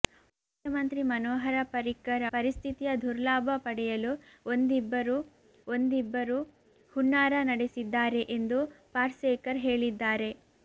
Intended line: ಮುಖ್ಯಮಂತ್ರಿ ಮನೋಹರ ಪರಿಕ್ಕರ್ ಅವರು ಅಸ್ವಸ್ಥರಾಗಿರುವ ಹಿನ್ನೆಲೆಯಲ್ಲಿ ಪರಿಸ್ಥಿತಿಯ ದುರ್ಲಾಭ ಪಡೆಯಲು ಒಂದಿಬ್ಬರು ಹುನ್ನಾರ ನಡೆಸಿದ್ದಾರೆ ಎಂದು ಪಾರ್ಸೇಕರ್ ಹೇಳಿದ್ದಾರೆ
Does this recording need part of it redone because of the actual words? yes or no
yes